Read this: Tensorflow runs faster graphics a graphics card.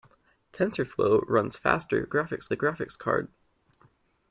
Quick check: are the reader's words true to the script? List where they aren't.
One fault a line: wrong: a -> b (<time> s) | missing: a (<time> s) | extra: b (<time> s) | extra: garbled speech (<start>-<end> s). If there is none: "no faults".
no faults